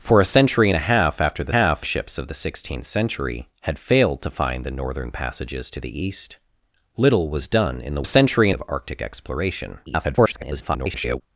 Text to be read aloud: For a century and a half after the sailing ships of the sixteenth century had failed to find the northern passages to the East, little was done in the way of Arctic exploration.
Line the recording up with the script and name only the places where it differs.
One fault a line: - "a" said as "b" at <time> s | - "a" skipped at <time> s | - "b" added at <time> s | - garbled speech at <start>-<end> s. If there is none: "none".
- "sailing" said as "half" at 1.5 s
- "way" said as "century" at 8.0 s
- garbled speech at 9.9-11.2 s